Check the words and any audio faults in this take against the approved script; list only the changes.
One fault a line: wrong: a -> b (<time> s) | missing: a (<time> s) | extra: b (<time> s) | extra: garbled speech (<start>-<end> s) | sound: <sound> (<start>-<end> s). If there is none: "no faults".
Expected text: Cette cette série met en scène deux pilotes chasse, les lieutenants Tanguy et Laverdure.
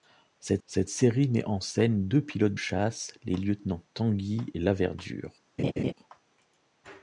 sound: laugh (5.6-5.9 s)